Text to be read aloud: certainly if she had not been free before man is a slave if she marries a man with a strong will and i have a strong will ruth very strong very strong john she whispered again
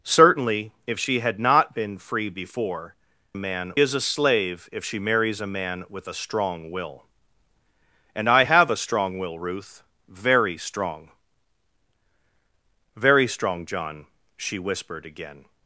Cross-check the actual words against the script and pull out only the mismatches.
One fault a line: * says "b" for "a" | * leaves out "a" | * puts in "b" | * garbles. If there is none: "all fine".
all fine